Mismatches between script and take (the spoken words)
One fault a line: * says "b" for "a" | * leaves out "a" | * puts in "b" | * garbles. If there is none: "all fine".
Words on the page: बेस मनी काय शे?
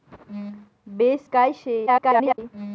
* leaves out "मनी"
* garbles